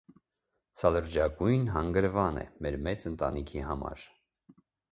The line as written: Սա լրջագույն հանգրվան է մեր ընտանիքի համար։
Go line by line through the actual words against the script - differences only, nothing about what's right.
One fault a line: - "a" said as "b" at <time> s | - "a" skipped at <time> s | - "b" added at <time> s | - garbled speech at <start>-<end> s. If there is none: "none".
- "մեծ" added at 2.9 s